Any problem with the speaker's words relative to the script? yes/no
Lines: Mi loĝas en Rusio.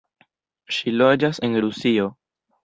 yes